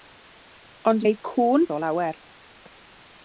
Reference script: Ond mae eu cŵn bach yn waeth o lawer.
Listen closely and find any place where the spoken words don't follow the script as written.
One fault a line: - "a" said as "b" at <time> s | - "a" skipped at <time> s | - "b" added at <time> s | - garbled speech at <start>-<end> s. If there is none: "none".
- "mae" skipped at 1.1 s
- "bach yn waeth" skipped at 1.7 s